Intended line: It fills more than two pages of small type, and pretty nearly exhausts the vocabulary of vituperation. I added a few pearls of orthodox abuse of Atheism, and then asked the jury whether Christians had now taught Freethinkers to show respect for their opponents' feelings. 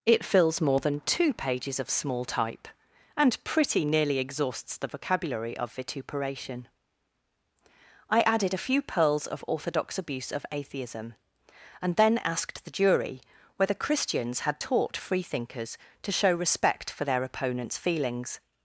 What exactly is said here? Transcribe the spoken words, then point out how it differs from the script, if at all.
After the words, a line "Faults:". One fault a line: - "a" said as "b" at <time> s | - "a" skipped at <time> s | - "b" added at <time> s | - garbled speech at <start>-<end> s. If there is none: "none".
It fills more than two pages of small type, and pretty nearly exhausts the vocabulary of vituperation. I added a few pearls of orthodox abuse of Atheism, and then asked the jury whether Christians had taught Freethinkers to show respect for their opponents' feelings.
Faults:
- "now" skipped at 14.6 s